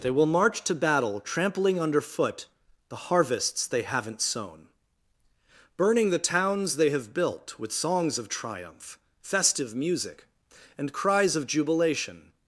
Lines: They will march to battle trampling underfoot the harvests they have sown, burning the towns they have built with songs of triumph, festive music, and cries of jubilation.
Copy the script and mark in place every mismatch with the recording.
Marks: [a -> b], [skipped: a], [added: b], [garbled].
They will march to battle trampling underfoot the harvests they [have -> haven't] sown, burning the towns they have built with songs of triumph, festive music, and cries of jubilation.